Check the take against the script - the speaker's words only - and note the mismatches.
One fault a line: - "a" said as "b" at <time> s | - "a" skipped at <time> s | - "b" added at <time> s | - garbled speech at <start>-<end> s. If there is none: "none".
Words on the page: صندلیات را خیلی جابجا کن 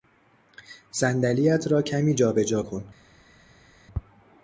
- "خیلی" said as "کمی" at 1.8 s